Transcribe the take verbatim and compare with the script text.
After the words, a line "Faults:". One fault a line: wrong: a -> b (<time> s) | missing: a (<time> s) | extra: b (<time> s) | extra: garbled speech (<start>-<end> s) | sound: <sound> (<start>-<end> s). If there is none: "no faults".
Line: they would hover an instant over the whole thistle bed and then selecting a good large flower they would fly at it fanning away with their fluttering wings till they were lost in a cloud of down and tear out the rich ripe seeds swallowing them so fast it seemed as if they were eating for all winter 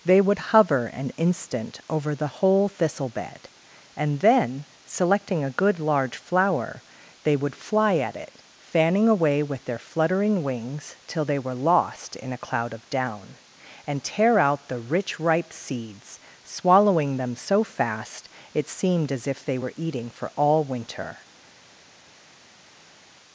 they would hover an instant over the whole thistle bed and then selecting a good large flower they would fly at it fanning away with their fluttering wings till they were lost in a cloud of down and tear out the rich ripe seeds swallowing them so fast it seemed as if they were eating for all winter
Faults:
no faults